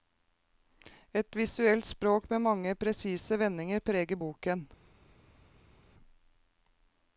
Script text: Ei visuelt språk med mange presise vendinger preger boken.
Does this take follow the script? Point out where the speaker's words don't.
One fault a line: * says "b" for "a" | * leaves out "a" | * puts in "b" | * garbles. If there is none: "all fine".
* says "Et" for "Ei"